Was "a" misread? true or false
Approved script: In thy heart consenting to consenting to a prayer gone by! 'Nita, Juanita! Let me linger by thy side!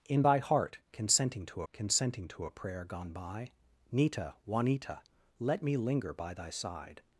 false